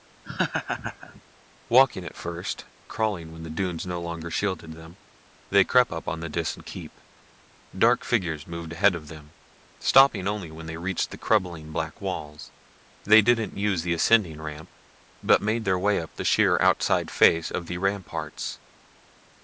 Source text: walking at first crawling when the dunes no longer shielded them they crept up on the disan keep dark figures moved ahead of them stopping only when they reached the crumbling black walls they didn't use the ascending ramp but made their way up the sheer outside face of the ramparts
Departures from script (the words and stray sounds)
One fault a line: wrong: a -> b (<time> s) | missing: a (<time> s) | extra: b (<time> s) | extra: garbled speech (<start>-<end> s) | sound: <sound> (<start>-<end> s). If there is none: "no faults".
sound: laugh (0.2-1.2 s)